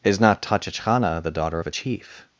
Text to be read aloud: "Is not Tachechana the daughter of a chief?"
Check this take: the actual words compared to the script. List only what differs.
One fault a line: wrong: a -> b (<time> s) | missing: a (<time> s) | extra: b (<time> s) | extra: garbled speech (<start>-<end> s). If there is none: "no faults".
no faults